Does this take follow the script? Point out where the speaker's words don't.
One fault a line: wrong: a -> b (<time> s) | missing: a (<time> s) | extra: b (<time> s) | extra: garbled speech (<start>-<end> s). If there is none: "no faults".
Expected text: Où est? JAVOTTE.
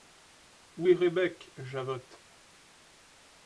extra: Rebec (0.9 s)